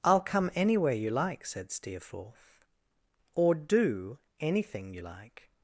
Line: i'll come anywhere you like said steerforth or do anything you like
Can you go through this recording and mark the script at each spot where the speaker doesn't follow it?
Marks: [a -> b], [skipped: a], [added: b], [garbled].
i'll come anywhere you like said steerforth or do anything you like